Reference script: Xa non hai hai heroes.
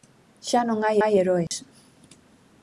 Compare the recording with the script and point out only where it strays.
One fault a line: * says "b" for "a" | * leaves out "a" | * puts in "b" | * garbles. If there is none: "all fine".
all fine